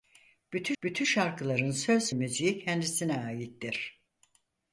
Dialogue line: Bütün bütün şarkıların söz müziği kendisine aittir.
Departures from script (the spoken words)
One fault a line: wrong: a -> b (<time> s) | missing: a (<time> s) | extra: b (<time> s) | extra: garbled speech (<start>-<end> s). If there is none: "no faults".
no faults